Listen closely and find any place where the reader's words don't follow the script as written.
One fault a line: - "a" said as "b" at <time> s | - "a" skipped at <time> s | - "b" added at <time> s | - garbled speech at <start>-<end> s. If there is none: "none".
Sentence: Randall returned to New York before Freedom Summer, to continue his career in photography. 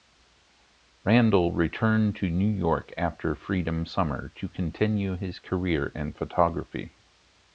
- "before" said as "after" at 3.0 s